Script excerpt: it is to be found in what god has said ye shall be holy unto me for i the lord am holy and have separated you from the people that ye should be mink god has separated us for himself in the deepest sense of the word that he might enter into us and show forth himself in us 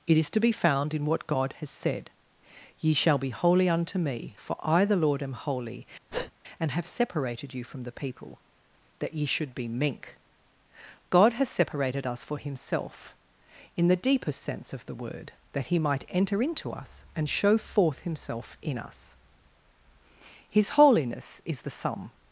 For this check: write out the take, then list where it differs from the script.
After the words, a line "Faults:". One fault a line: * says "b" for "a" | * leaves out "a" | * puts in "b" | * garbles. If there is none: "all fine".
it is to be found in what god has said ye shall be holy unto me for i the lord am holy and have separated you from the people that ye should be mink god has separated us for himself in the deepest sense of the word that he might enter into us and show forth himself in us his holiness is the sum
Faults:
* puts in "his holiness is the sum"